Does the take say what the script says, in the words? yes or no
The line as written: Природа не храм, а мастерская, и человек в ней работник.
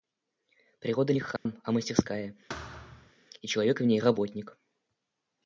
yes